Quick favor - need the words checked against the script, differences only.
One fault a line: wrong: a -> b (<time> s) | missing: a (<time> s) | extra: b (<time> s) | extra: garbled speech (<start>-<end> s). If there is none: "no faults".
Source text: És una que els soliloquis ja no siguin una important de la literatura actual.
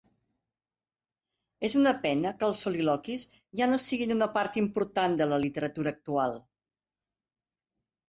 extra: pena (2.1 s)
extra: part (4.4 s)